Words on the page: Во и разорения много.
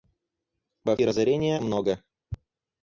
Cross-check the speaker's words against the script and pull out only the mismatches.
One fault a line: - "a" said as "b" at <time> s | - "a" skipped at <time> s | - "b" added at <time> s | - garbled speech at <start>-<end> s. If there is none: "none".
none